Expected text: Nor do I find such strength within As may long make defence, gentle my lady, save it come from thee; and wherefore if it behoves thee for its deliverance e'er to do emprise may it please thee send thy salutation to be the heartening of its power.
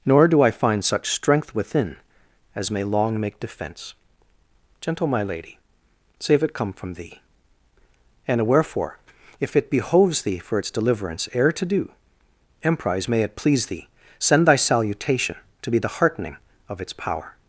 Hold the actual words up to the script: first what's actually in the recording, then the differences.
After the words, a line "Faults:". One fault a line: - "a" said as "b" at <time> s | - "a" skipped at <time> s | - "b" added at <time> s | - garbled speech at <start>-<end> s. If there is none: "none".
Nor do I find such strength within As may long make defence, gentle my lady, save it come from thee; and wherefore if it behoves thee for its deliverance e'er to do emprise may it please thee send thy salutation to be the heartening of its power.
Faults:
none